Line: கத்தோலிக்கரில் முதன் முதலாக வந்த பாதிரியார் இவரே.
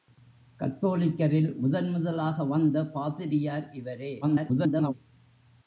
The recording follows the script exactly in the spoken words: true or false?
false